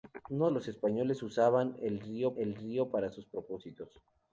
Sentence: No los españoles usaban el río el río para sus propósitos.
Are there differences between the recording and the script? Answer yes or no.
no